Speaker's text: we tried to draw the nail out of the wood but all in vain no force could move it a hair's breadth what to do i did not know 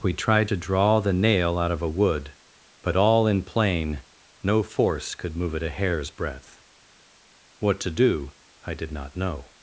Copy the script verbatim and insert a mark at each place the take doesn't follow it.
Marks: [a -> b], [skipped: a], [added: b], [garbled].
we tried to draw the nail out of [the -> a] wood but all in [vain -> plain] no force could move it a hair's breadth what to do i did not know